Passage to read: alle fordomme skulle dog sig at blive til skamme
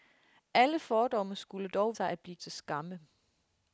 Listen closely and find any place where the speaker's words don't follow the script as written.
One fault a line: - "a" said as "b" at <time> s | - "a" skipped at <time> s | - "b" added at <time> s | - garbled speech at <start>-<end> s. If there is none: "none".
none